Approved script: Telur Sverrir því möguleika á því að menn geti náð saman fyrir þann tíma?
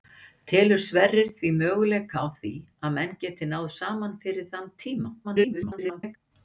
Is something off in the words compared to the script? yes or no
yes